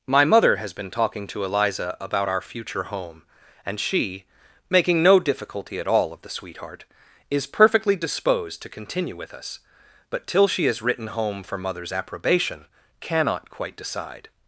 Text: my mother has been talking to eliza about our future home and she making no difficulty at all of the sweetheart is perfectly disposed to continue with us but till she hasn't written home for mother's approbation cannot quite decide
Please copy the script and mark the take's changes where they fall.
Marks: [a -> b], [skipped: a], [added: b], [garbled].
my mother has been talking to eliza about our future home and she making no difficulty at all of the sweetheart is perfectly disposed to continue with us but till she [hasn't -> has] written home for mother's approbation cannot quite decide